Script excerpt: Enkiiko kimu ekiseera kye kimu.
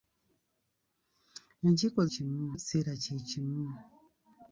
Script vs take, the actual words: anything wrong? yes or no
no